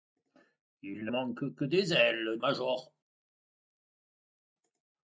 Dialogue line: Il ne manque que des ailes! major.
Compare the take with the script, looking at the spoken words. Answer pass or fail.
pass